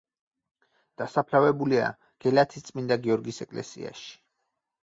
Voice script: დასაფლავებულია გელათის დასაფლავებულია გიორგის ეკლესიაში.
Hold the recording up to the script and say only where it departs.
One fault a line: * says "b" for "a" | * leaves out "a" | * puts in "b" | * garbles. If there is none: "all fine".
* says "წმინდა" for "დასაფლავებულია"